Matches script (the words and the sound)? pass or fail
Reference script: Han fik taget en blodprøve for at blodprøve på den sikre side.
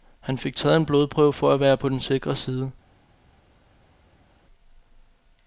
fail